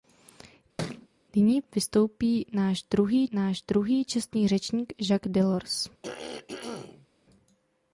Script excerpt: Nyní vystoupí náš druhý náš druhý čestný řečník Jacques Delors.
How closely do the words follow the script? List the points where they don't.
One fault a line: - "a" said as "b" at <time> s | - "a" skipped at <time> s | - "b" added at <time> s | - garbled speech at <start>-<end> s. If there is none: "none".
none